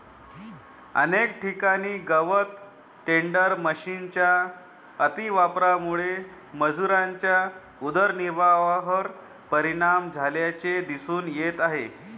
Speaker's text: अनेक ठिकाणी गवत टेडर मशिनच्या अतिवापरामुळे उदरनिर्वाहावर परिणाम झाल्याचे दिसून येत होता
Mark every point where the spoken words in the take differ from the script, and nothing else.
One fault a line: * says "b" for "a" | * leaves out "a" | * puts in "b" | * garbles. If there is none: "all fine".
* puts in "मजुरांच्या"
* says "आहे" for "होता"